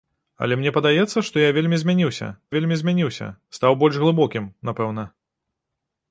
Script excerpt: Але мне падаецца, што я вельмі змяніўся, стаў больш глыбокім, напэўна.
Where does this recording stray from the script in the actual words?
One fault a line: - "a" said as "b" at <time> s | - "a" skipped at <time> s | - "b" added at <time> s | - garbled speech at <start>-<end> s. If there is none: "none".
- "вельмі змяніўся" added at 2.6 s